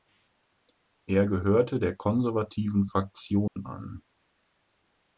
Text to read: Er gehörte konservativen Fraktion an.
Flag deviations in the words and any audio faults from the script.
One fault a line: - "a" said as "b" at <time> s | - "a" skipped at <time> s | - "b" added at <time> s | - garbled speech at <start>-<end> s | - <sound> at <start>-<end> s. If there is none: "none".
- "der" added at 1.8 s
- dropout at 3.5-3.6 s